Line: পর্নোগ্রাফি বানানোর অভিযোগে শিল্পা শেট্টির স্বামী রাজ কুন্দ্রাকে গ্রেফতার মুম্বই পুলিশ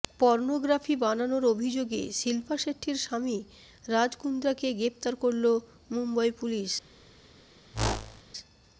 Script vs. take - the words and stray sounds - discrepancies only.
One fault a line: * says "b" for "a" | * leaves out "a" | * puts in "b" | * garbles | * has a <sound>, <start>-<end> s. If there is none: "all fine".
* puts in "করল"
* has a whoosh, 7.7-8.2 s